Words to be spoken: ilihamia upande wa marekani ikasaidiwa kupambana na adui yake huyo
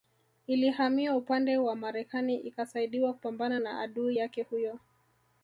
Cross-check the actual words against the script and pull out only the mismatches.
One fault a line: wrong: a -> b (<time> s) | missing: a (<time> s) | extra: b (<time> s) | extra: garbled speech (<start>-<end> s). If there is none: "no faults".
no faults